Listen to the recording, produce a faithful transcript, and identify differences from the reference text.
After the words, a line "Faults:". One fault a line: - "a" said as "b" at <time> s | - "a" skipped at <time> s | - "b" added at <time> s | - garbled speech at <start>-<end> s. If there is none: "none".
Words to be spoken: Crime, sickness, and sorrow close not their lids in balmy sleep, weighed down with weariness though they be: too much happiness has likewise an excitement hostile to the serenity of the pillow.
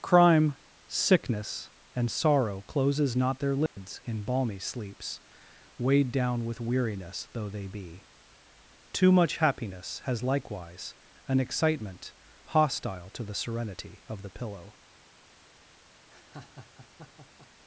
Crime, sickness, and sorrow closes not their lids in balmy sleeps, weighed down with weariness though they be: too much happiness has likewise an excitement hostile to the serenity of the pillow.
Faults:
- "close" said as "closes" at 2.7 s
- "sleep" said as "sleeps" at 4.6 s